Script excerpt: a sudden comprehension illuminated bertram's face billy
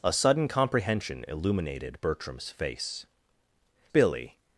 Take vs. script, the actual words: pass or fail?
pass